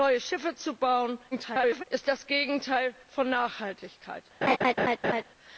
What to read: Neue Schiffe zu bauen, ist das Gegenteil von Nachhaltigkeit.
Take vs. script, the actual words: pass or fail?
fail